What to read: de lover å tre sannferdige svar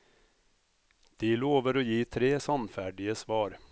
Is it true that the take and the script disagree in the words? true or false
true